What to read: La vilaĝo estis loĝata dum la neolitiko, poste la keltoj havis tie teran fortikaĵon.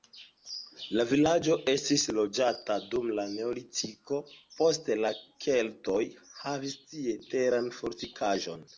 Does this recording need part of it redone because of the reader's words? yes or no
no